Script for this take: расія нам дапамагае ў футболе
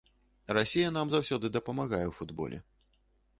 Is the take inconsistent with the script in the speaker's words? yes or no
yes